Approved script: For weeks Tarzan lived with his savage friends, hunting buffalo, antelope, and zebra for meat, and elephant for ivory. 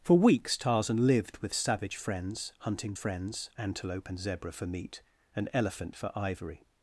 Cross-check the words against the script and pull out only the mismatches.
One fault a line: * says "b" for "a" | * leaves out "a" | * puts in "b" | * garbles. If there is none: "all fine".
* leaves out "his"
* says "friends" for "buffalo"